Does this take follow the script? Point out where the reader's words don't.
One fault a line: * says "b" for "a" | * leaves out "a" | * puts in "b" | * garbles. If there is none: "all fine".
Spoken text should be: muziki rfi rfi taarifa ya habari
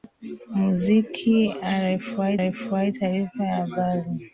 all fine